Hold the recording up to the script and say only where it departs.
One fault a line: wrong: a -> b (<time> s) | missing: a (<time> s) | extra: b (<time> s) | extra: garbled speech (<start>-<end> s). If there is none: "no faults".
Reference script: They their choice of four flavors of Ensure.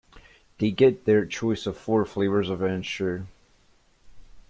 extra: get (0.7 s)